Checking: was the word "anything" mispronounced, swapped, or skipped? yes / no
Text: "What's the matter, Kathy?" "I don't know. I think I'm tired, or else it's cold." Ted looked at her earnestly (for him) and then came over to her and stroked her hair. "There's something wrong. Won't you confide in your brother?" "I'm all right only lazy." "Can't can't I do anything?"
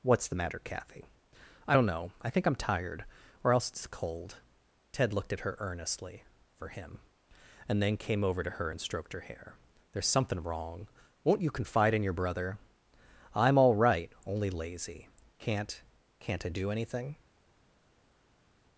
no